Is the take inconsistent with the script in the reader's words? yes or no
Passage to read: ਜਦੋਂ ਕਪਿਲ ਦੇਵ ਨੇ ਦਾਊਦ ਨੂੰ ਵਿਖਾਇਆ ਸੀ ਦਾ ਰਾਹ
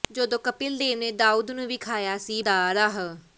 no